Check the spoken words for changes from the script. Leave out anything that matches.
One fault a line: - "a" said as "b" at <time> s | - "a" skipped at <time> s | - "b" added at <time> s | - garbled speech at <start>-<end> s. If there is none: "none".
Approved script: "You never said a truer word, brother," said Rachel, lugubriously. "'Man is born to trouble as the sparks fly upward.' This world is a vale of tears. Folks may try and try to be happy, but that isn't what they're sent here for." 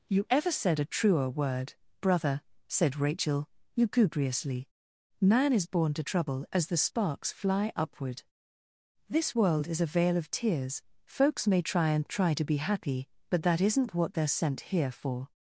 - "never" said as "ever" at 0.3 s